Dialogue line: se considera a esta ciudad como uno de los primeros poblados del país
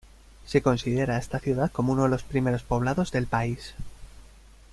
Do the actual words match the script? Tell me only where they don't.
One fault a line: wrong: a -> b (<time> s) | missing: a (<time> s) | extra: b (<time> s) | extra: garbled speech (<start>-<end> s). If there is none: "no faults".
no faults